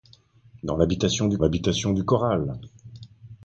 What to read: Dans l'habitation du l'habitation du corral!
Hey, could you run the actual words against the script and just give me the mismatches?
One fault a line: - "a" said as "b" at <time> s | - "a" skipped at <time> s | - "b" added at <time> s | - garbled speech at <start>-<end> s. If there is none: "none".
none